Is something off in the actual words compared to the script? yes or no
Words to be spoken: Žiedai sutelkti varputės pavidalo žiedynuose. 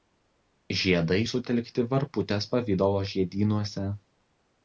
no